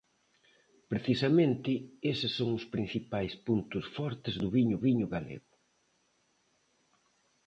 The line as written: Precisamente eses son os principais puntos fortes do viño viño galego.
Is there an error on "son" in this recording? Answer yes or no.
no